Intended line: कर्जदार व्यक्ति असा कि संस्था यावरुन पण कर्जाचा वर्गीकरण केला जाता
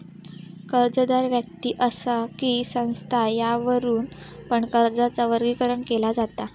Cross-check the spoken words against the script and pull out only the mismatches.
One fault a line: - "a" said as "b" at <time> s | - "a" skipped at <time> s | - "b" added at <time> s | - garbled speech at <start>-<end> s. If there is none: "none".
none